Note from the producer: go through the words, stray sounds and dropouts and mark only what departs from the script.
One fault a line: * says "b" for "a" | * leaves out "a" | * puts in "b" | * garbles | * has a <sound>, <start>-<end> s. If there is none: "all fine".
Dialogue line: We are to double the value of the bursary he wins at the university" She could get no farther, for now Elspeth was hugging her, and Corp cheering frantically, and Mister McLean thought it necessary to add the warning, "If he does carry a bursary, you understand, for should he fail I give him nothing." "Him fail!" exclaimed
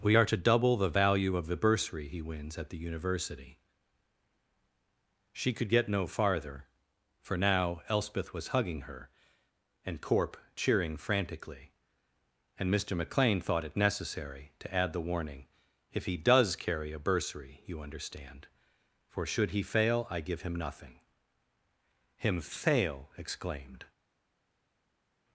all fine